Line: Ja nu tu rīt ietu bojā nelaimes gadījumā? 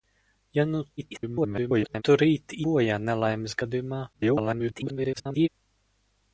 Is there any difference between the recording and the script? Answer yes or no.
yes